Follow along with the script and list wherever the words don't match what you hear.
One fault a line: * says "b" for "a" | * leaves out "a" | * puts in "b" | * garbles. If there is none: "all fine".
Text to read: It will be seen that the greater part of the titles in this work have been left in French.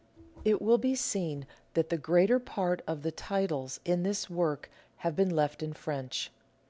all fine